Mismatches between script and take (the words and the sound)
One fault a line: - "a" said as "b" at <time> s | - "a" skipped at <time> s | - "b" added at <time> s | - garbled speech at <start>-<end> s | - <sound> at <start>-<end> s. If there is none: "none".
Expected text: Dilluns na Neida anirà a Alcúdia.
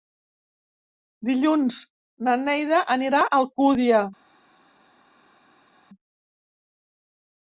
none